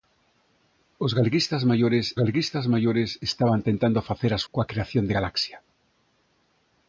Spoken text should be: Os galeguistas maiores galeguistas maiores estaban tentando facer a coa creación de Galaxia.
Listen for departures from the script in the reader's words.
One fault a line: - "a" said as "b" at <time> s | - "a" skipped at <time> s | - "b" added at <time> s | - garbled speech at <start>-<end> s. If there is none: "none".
none